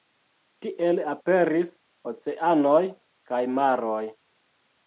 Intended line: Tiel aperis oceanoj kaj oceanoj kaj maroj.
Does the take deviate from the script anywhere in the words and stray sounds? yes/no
yes